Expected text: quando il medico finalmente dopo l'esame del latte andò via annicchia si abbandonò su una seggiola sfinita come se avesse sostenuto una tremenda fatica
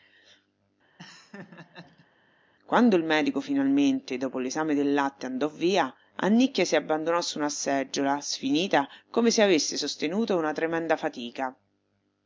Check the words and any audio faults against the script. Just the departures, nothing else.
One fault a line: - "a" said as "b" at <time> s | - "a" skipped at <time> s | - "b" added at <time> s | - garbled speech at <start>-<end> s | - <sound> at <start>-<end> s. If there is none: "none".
- laugh at 1.0-2.1 s